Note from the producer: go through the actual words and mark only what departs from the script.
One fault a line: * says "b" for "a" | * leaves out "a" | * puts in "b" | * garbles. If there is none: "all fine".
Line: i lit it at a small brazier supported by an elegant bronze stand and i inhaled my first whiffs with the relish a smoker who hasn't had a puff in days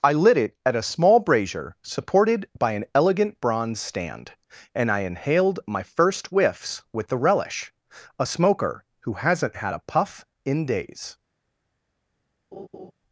all fine